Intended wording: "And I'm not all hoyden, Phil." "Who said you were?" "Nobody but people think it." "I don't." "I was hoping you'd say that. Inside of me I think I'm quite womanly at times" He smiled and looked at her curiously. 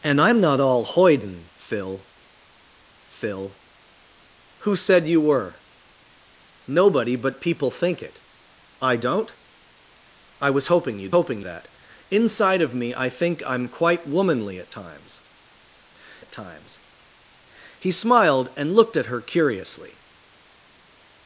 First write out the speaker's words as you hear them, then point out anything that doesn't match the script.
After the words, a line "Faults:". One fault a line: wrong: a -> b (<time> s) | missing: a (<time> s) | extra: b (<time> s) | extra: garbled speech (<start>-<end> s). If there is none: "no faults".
"And I'm not all hoyden, Phil Phil." "Who said you were?" "Nobody but people think it." "I don't." "I was hoping you'd hoping that. Inside of me I think I'm quite womanly at times at times" He smiled and looked at her curiously.
Faults:
extra: Phil (3.1 s)
wrong: say -> hoping (11.1 s)
extra: at times (16.2 s)